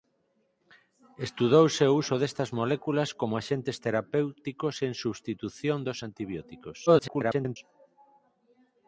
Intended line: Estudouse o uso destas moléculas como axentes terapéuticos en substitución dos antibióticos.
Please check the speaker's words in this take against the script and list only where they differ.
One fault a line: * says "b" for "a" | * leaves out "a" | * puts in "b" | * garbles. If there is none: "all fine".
* garbles